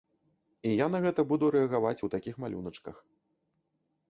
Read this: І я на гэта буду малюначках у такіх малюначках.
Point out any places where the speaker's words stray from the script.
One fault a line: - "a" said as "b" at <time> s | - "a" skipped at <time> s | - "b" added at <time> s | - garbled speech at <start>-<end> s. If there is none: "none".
- "малюначках" said as "рэагаваць" at 1.6 s